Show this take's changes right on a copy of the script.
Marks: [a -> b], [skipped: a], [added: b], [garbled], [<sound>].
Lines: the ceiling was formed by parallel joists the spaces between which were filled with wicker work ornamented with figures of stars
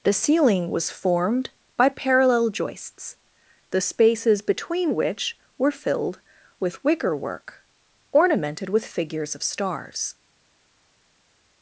the ceiling was formed by parallel joists the spaces between which were filled with wicker work ornamented with figures of stars